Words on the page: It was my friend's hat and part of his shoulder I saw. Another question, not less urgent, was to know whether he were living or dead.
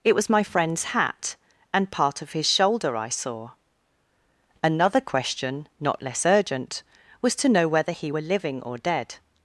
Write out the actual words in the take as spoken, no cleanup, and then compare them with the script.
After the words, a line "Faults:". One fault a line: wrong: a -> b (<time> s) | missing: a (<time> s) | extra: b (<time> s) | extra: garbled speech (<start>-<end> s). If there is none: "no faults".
It was my friend's hat and part of his shoulder I saw. Another question, not less urgent, was to know whether he were living or dead.
Faults:
no faults